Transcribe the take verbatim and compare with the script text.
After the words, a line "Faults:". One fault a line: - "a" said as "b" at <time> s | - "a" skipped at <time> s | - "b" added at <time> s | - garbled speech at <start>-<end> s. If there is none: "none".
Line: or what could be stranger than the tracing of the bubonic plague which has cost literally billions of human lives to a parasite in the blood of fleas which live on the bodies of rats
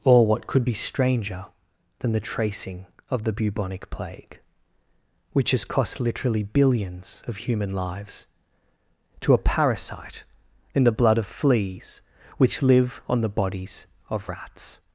or what could be stranger than the tracing of the bubonic plague which has cost literally billions of human lives to a parasite in the blood of fleas which live on the bodies of rats
Faults:
none